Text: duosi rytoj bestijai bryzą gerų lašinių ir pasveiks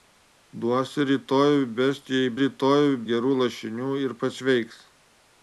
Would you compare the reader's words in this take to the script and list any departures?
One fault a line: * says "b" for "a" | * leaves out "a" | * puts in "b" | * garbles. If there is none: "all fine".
* says "rytoj" for "bryzą"